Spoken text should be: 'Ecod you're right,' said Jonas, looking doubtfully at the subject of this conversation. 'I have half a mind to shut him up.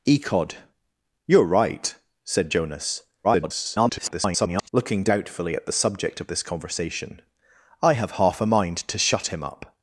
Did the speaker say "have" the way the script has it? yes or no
yes